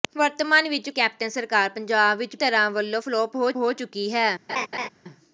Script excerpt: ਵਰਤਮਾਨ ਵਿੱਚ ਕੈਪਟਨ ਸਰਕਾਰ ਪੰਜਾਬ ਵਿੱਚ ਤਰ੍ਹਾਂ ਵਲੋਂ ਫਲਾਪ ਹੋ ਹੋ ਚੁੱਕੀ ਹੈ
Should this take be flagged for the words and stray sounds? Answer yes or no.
yes